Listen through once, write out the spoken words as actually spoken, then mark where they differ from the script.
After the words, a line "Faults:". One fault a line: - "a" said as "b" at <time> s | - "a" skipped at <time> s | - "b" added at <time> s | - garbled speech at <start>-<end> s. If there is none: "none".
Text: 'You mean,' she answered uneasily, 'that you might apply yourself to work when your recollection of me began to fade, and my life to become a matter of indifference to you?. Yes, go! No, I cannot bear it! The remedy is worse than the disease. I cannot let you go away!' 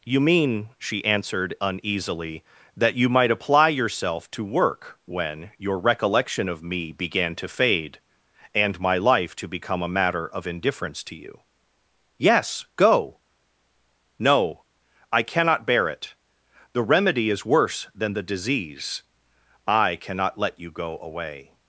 'You mean,' she answered uneasily, 'that you might apply yourself to work when your recollection of me began to fade, and my life to become a matter of indifference to you?. Yes, go! No, I cannot bear it! The remedy is worse than the disease. I cannot let you go away!'
Faults:
none